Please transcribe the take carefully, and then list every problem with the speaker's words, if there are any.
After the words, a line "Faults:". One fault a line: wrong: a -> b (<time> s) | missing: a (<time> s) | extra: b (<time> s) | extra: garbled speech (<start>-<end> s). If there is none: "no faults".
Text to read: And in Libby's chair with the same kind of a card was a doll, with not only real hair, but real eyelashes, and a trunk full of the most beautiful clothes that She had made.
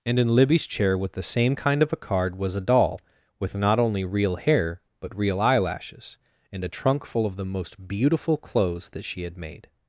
And in Libby's chair with the same kind of a card was a doll, with not only real hair, but real eyelashes, and a trunk full of the most beautiful clothes that She had made.
Faults:
no faults